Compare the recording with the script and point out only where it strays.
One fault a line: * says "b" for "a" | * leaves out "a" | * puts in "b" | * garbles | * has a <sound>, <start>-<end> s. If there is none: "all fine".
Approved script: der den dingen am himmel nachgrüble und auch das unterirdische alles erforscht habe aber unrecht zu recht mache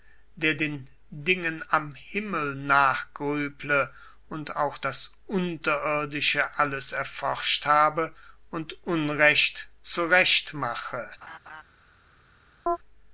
* says "und" for "aber"
* has a laugh, 11.2-11.6 s
* has a chirp, 12.7-12.8 s